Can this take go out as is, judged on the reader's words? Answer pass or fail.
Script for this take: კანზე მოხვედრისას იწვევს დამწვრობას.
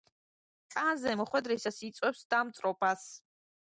pass